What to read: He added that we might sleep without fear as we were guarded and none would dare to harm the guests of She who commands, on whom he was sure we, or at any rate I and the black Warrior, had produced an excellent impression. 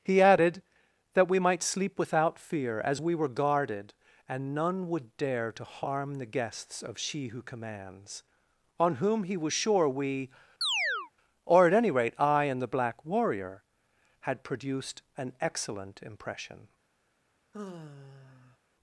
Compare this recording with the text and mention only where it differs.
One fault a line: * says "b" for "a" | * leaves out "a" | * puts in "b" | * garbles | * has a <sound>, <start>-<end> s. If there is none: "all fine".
* has a chirp, 10.6-11.1 s
* has a sigh, 17.5-18.6 s